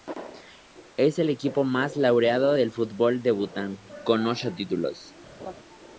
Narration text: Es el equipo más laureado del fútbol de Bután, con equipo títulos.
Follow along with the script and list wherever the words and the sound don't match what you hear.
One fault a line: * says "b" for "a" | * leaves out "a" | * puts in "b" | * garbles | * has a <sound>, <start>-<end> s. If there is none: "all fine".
* says "ocho" for "equipo"
* has a laugh, 5.4-5.5 s